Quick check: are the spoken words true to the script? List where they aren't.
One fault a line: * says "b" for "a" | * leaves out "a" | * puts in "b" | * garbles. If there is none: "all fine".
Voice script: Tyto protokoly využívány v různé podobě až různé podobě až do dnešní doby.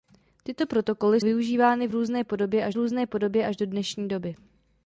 all fine